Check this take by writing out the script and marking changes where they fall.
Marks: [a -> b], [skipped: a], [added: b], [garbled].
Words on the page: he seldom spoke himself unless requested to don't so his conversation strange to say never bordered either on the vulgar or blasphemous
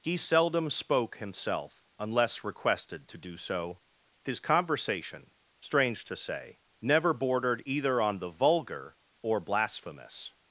he seldom spoke himself unless requested to [don't -> do] so his conversation strange to say never bordered either on the vulgar or blasphemous